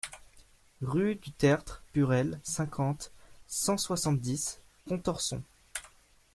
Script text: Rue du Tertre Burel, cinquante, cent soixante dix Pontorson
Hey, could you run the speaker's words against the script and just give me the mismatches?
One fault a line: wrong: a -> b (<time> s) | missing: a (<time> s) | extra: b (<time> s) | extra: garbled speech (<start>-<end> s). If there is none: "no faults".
no faults